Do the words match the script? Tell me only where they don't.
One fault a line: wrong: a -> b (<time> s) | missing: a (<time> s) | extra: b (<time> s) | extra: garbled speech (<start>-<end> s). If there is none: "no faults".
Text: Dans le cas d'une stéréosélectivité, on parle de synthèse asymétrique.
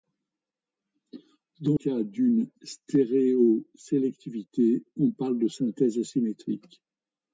missing: le (1.8 s)